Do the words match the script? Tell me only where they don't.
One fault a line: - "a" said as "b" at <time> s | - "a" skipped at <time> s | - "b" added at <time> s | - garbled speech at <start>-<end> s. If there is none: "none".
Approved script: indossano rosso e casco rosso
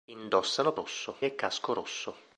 none